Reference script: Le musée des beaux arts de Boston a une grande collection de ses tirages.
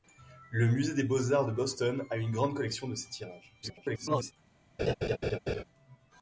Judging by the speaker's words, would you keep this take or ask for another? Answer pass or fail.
fail